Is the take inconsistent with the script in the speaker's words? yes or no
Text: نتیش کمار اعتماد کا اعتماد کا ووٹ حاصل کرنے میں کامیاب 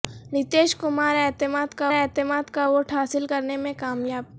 no